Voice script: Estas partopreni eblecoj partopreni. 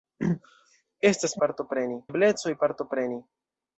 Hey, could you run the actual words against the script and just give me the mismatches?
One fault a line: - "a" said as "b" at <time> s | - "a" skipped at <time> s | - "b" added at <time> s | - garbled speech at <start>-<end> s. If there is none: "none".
none